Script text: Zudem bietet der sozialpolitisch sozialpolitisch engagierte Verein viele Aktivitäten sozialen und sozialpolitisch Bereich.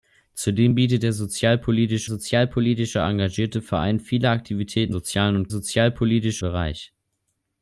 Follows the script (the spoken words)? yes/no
yes